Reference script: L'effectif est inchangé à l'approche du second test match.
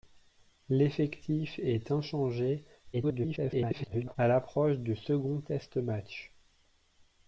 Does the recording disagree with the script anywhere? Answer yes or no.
yes